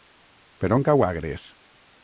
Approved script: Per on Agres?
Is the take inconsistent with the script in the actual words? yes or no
yes